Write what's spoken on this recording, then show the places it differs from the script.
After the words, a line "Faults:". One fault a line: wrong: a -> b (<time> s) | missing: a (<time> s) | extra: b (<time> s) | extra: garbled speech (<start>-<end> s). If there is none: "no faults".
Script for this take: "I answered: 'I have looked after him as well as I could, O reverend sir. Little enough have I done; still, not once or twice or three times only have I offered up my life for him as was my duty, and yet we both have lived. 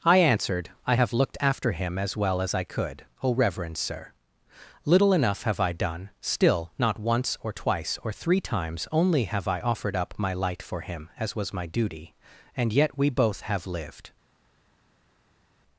"I answered: 'I have looked after him as well as I could, O reverend sir. Little enough have I done; still, not once or twice or three times only have I offered up my light for him as was my duty, and yet we both have lived.
Faults:
wrong: life -> light (10.3 s)